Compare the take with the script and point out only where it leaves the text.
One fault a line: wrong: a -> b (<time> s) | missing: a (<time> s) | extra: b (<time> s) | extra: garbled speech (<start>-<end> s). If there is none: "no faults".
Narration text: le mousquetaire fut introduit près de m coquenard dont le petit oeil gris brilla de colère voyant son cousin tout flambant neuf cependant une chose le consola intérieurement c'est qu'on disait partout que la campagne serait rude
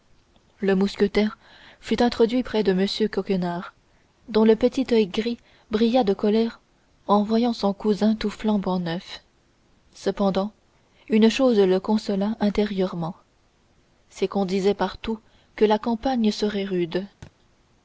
extra: en (7.1 s)